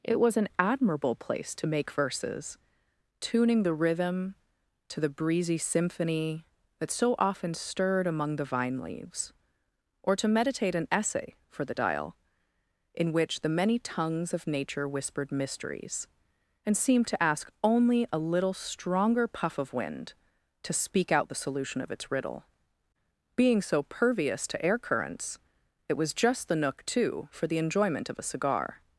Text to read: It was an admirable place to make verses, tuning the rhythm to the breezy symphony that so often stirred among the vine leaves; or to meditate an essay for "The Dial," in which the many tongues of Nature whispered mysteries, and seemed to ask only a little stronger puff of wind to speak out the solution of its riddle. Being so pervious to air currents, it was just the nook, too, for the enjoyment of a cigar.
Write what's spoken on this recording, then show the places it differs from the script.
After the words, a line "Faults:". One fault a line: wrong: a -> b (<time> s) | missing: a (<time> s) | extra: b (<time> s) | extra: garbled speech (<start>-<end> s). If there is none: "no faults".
It was an admirable place to make verses, tuning the rhythm to the breezy symphony that so often stirred among the vine leaves; or to meditate an essay for "The Dial," in which the many tongues of Nature whispered mysteries, and seemed to ask only a little stronger puff of wind to speak out the solution of its riddle. Being so pervious to air currents, it was just the nook, too, for the enjoyment of a cigar.
Faults:
no faults